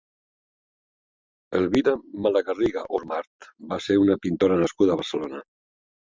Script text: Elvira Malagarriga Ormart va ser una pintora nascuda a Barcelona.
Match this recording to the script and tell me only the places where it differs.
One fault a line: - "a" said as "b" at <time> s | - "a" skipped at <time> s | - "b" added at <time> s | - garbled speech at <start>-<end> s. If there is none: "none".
none